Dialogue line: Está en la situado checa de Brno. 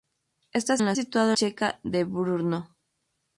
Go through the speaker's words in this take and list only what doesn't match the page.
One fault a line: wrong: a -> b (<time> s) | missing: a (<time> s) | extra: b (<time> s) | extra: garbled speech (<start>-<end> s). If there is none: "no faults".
no faults